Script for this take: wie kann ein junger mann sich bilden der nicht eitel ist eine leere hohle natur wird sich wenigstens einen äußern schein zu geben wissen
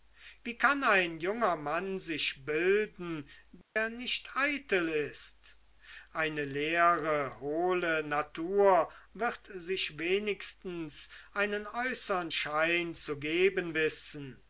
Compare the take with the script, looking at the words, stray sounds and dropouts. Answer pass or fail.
fail